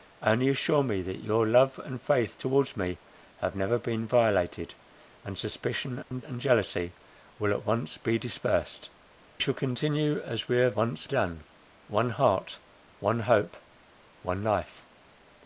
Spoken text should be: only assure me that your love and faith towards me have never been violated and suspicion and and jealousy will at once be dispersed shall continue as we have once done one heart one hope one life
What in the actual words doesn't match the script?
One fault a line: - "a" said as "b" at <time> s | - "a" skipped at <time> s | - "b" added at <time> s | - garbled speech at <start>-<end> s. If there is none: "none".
none